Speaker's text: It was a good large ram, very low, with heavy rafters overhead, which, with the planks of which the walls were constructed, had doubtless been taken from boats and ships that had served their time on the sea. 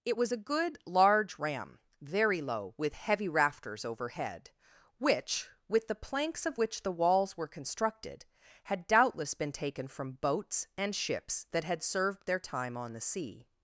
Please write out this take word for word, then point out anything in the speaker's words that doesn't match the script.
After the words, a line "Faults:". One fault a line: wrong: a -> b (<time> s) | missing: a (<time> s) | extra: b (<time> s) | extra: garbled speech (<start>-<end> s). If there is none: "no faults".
It was a good large ram, very low, with heavy rafters overhead, which, with the planks of which the walls were constructed, had doubtless been taken from boats and ships that had served their time on the sea.
Faults:
no faults